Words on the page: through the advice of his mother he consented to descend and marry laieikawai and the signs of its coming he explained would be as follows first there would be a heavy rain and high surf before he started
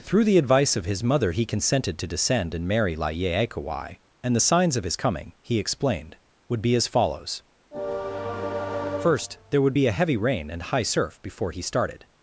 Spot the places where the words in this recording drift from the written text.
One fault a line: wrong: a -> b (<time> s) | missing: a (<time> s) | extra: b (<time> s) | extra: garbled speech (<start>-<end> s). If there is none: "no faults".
wrong: its -> his (4.8 s)